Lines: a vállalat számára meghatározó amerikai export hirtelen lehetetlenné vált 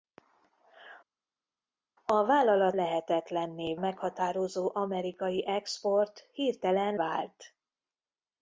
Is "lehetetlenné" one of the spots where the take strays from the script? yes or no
yes